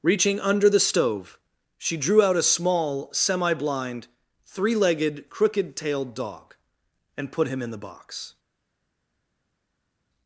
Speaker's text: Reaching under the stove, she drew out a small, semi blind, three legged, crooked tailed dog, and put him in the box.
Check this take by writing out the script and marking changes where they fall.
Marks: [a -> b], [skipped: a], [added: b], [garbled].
Reaching under the stove, she drew out a small, semi blind, three legged, crooked tailed dog, and put him in the box.